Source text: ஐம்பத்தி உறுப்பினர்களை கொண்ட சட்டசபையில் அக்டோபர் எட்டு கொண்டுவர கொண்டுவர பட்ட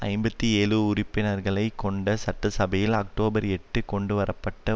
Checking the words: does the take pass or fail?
fail